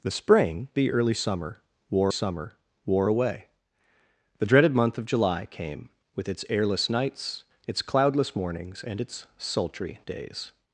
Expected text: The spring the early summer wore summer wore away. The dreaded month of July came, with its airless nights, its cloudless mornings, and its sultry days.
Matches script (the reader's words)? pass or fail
pass